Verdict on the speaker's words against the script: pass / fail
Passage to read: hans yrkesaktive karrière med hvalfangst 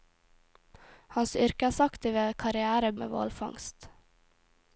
pass